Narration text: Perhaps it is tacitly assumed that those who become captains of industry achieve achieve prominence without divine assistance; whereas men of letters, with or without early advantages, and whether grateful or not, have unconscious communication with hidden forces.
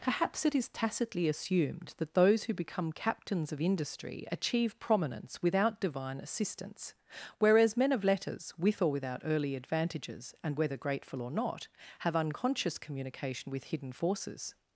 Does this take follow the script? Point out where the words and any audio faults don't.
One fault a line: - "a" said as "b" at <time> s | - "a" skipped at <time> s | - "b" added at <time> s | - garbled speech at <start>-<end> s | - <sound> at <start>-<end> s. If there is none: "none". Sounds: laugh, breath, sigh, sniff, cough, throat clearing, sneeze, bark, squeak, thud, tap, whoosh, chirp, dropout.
- "achieve" skipped at 4.8 s